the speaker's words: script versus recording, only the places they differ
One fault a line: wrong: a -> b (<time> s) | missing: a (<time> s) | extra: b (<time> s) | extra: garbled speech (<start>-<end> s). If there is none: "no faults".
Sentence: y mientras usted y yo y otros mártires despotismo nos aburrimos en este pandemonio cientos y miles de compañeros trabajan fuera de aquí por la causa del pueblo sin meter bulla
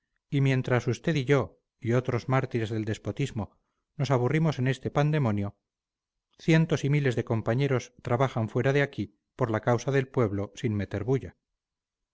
extra: del (2.7 s)